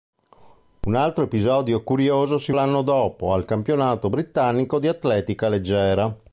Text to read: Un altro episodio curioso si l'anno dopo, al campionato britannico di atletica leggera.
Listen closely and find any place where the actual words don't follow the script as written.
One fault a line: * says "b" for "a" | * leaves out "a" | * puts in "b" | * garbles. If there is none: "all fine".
all fine